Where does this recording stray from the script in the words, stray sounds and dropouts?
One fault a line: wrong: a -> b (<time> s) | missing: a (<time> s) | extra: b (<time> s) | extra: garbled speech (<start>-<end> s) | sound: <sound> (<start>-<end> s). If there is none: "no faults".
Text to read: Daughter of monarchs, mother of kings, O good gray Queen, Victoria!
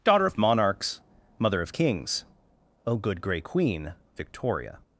no faults